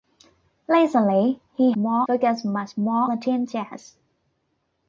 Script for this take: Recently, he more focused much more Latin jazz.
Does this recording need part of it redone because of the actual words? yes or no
no